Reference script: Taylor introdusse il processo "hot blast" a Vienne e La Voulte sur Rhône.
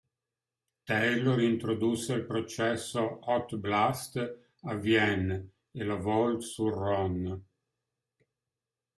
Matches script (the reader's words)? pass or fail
pass